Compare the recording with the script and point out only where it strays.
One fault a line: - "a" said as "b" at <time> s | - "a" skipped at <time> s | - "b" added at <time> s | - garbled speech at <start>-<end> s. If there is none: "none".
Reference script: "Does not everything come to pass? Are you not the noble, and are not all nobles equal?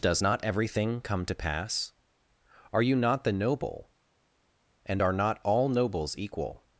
none